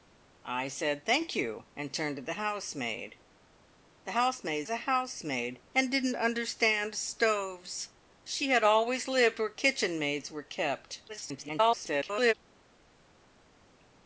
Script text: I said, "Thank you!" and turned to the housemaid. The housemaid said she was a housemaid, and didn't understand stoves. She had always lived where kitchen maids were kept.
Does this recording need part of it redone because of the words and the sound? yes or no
yes